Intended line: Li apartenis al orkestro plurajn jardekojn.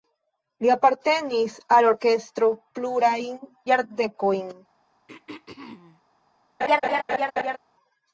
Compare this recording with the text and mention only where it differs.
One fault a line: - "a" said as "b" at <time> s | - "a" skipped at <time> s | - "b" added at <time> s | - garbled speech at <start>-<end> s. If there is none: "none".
none